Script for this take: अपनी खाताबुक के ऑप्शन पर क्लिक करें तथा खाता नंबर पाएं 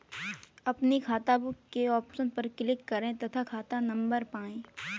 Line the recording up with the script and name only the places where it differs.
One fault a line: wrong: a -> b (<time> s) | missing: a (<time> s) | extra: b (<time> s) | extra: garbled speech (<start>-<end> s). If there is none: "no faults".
no faults